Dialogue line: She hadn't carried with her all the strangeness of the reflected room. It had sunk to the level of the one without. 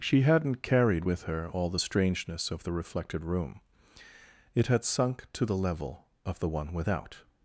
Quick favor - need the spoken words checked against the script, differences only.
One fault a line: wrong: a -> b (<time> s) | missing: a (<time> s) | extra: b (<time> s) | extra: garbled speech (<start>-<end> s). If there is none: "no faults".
no faults